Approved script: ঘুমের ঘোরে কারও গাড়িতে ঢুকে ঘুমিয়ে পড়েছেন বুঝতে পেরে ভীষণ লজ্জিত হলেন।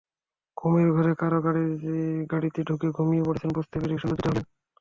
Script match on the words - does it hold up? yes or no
yes